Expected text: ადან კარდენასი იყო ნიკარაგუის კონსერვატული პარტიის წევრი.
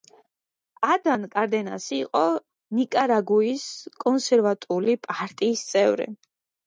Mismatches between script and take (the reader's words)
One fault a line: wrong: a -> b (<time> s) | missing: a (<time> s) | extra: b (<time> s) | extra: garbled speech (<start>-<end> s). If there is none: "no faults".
no faults